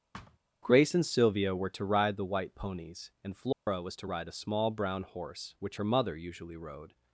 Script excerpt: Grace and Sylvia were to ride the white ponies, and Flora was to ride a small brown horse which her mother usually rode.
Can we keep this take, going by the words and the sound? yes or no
no